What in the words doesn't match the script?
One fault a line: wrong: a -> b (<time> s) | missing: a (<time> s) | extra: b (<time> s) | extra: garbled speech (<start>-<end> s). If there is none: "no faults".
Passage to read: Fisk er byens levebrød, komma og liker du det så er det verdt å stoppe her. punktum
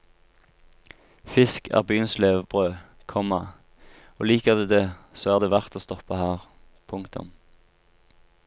no faults